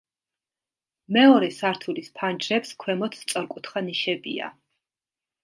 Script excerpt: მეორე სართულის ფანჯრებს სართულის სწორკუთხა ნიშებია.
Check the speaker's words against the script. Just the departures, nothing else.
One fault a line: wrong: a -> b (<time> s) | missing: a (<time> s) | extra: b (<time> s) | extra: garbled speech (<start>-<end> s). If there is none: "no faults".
wrong: სართულის -> ქვემოთ (2.9 s)